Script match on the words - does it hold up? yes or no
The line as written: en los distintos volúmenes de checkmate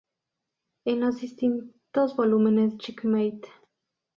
no